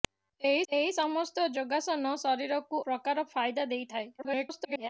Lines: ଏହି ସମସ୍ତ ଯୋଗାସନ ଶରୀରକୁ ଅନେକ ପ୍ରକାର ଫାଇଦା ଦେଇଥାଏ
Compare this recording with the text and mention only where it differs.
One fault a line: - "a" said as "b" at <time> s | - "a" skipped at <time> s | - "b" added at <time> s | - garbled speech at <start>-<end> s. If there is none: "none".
- "ଏହି" added at 0.7 s
- "ଅନେକ" skipped at 2.8 s
- garbled speech at 4.2-4.9 s